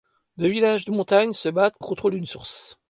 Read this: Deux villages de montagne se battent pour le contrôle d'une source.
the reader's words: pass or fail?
fail